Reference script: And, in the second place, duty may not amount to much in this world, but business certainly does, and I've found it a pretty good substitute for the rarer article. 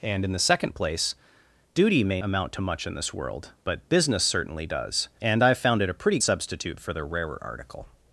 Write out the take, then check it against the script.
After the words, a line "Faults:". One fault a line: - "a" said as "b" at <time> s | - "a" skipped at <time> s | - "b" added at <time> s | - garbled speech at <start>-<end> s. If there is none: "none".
And, in the second place, duty may amount to much in this world, but business certainly does, and I've found it a pretty substitute for the rarer article.
Faults:
- "not" skipped at 2.2 s
- "good" skipped at 6.2 s